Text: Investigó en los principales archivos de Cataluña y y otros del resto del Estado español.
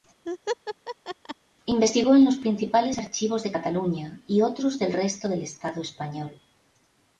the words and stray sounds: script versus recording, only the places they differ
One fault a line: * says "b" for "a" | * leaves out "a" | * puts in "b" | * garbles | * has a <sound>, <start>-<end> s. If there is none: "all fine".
* has a laugh, 0.3-1.4 s
* leaves out "y"